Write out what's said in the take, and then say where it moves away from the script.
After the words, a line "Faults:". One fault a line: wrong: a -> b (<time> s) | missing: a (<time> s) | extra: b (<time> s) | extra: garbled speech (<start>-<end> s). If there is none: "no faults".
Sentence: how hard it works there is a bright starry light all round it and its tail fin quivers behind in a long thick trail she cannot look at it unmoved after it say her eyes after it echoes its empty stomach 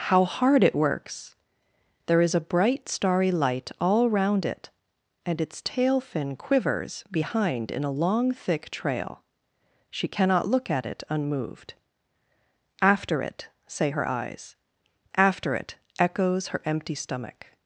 how hard it works there is a bright starry light all round it and its tail fin quivers behind in a long thick trail she cannot look at it unmoved after it say her eyes after it echoes her empty stomach
Faults:
wrong: its -> her (16.5 s)